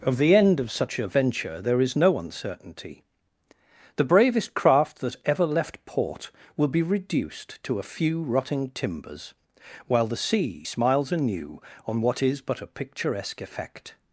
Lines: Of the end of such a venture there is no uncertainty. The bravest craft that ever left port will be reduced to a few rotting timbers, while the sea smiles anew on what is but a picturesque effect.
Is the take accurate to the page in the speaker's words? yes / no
yes